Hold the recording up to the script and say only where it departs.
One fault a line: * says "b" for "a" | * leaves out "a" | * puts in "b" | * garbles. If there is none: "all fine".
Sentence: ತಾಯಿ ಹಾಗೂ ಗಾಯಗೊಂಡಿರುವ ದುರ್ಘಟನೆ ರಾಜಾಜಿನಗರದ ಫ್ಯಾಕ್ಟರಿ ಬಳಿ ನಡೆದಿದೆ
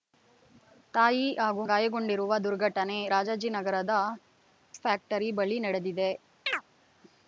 all fine